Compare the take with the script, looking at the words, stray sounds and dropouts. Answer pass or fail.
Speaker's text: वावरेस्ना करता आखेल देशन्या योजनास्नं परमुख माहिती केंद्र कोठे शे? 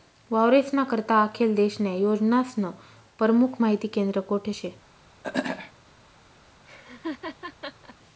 fail